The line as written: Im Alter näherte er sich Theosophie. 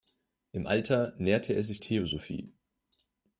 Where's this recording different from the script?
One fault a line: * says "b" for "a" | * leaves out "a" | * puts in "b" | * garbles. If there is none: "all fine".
all fine